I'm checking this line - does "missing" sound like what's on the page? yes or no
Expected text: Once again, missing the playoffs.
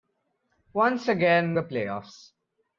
no